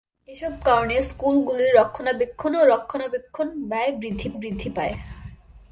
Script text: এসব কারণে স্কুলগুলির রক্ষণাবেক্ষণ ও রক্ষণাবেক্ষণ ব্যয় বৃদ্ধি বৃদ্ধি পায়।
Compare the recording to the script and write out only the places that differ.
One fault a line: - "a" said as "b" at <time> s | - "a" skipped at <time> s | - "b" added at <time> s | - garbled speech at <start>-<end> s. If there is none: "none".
none